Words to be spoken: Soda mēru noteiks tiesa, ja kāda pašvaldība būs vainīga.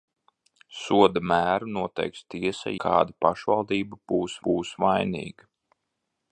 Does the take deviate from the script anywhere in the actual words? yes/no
yes